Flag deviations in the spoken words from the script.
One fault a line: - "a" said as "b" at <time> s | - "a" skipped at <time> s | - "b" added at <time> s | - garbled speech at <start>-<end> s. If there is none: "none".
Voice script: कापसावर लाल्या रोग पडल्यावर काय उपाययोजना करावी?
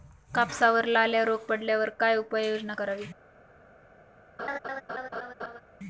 none